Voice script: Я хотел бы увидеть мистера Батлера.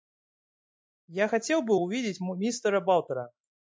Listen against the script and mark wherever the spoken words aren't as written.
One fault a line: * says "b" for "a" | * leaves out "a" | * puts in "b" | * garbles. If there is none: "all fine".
all fine